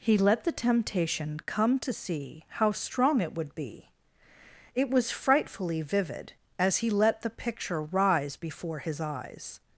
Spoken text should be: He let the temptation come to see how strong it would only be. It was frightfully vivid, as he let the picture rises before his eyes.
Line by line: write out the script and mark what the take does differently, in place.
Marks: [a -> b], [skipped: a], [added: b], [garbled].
He let the temptation come to see how strong it would [skipped: only] be. It was frightfully vivid, as he let the picture [rises -> rise] before his eyes.